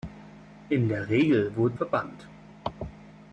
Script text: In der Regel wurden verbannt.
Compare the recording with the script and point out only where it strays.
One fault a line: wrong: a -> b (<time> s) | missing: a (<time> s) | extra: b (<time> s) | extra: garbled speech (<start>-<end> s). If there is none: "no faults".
no faults